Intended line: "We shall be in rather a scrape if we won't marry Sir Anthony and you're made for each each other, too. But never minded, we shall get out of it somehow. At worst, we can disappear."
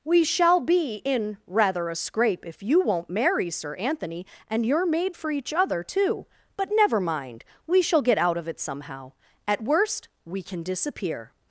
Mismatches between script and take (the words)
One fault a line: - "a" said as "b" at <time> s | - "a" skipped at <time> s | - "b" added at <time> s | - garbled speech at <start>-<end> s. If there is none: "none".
- "we" said as "you" at 2.6 s
- "each" skipped at 5.5 s
- "minded" said as "mind" at 7.0 s